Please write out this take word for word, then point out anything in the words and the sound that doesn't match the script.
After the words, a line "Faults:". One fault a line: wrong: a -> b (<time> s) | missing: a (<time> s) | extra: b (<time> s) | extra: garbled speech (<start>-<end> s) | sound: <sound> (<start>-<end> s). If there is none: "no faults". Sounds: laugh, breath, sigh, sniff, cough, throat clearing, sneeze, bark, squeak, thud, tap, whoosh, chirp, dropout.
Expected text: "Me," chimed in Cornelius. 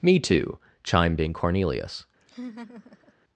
"Me too," chimed in Cornelius.
Faults:
extra: too (0.2 s)
sound: laugh (2.2-3.1 s)